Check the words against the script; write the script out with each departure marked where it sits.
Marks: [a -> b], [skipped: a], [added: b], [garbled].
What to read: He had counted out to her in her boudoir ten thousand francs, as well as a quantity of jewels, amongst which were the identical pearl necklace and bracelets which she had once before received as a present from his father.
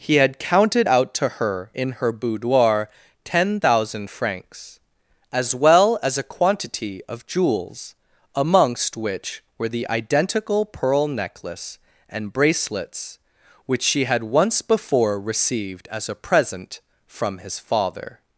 He had counted out to her in her boudoir ten thousand francs, as well as a quantity of jewels, amongst which were the identical pearl necklace and bracelets which she had once before received as a present from his father.